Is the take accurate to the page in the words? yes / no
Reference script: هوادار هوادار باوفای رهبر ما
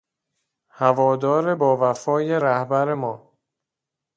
no